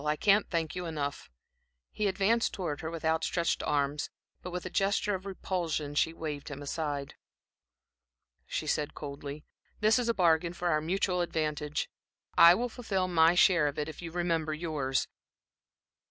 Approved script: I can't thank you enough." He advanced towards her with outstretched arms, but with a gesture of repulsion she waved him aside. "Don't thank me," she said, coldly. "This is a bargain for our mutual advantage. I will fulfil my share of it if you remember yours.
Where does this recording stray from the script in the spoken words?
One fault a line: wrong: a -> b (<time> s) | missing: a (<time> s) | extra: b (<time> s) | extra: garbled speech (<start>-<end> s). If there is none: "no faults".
missing: Don't thank me (7.1 s)